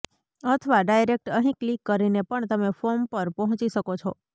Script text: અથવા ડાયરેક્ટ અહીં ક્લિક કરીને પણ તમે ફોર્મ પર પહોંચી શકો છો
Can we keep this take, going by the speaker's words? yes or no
yes